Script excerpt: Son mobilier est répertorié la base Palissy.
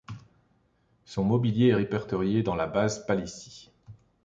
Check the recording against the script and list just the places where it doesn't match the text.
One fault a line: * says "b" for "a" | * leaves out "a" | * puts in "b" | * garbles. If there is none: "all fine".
* puts in "dans"